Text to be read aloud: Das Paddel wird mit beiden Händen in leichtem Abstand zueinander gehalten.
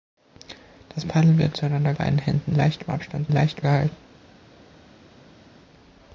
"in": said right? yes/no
no